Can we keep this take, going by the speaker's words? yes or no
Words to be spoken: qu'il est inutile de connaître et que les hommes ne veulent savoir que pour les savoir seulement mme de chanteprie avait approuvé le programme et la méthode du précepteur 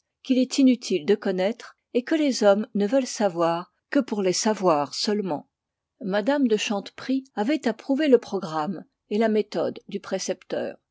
yes